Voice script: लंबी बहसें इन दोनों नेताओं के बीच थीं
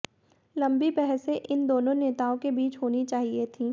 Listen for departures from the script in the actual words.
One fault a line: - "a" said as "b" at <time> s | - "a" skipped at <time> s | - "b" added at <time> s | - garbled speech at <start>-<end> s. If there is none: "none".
- "होनी चाहिए" added at 2.8 s